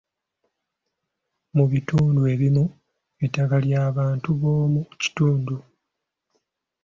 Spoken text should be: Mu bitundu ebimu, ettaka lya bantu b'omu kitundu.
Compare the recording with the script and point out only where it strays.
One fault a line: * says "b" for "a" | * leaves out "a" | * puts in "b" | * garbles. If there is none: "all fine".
all fine